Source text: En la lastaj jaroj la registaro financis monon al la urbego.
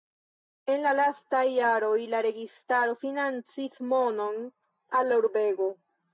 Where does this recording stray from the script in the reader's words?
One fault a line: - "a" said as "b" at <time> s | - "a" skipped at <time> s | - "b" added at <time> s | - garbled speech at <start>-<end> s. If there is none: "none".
none